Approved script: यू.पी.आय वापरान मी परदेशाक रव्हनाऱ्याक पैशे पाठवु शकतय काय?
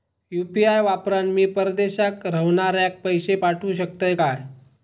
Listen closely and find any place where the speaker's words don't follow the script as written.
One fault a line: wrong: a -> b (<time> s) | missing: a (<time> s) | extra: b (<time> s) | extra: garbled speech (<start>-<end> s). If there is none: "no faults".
no faults